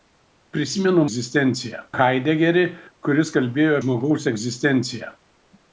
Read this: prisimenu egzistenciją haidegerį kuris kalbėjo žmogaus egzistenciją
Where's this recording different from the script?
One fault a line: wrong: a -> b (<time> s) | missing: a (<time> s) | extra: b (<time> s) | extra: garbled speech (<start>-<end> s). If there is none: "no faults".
no faults